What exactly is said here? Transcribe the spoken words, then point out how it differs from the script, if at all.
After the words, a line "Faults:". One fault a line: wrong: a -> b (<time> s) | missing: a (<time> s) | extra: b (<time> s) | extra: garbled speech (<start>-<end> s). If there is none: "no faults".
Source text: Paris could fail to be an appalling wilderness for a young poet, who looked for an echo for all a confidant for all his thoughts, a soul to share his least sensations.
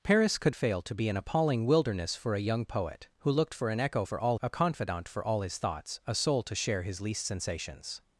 Paris could fail to be an appalling wilderness for a young poet, who looked for an echo for all a confidant for all his thoughts, a soul to share his least sensations.
Faults:
no faults